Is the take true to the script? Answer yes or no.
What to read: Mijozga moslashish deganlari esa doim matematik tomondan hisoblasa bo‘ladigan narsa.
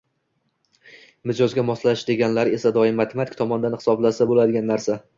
yes